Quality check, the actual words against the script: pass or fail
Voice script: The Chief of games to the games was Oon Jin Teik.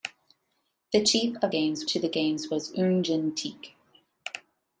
pass